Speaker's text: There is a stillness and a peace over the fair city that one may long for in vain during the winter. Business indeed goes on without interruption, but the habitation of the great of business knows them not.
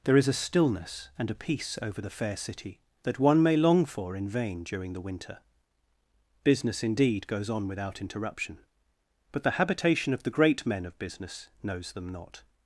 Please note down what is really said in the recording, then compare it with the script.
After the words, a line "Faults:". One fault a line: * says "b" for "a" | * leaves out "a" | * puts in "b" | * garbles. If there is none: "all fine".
There is a stillness and a peace over the fair city that one may long for in vain during the winter. Business indeed goes on without interruption, but the habitation of the great men of business knows them not.
Faults:
* puts in "men"